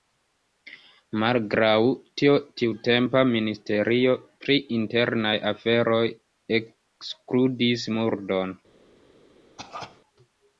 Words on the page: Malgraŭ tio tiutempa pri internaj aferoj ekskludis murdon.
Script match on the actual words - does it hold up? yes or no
no